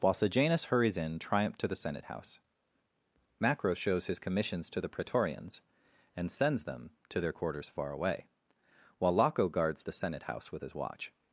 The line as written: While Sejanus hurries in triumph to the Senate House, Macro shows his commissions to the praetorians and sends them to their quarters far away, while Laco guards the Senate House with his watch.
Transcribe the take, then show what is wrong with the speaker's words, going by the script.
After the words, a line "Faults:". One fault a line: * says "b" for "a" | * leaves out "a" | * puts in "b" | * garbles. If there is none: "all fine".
While Sejanus hurries in triumph to the Senate House, Macro shows his commissions to the praetorians and sends them to their quarters far away, while Laco guards the Senate House with his watch.
Faults:
all fine